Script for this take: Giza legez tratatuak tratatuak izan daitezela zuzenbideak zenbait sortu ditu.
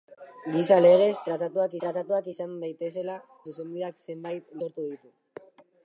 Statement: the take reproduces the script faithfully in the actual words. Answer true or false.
true